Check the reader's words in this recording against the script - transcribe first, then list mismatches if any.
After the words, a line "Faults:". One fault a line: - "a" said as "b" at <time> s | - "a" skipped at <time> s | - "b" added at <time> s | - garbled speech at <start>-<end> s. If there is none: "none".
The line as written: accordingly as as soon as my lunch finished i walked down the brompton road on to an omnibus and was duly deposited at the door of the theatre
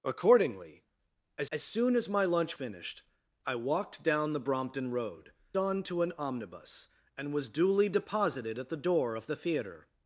accordingly as as soon as my lunch finished i walked down the brompton road on to an omnibus and was duly deposited at the door of the theatre
Faults:
none